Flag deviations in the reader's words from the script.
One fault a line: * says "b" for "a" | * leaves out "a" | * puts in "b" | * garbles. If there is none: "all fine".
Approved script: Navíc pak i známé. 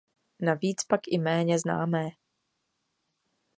* puts in "méně"